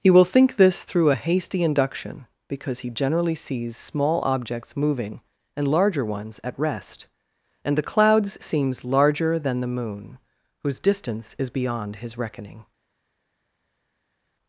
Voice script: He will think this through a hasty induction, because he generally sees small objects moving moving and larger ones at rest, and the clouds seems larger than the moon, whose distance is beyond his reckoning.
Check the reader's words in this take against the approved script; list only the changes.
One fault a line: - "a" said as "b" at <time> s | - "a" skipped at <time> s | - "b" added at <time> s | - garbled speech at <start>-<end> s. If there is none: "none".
- "moving" skipped at 5.2 s